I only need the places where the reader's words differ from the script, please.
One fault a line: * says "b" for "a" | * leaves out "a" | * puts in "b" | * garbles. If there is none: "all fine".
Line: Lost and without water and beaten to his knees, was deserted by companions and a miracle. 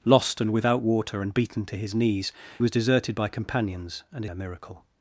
all fine